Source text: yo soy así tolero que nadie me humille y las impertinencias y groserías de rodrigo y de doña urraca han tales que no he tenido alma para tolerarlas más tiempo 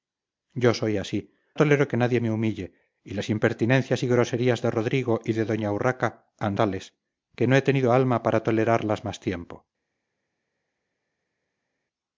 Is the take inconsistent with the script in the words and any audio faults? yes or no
no